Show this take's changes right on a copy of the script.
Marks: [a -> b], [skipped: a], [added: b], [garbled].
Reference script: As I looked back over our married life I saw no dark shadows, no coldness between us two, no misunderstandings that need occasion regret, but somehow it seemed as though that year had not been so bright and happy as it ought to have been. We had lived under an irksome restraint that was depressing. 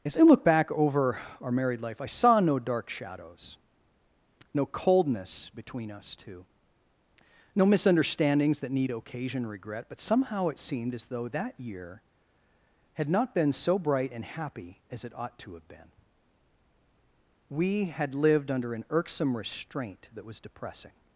As I [looked -> look] back over our married life I saw no dark shadows, no coldness between us two, no misunderstandings that need occasion regret, but somehow it seemed as though that year had not been so bright and happy as it ought to have been. We had lived under an irksome restraint that was depressing.